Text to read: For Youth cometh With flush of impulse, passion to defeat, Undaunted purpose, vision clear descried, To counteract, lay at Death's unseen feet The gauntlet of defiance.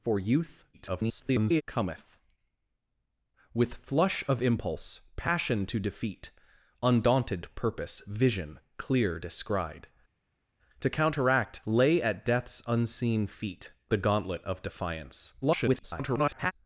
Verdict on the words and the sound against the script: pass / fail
fail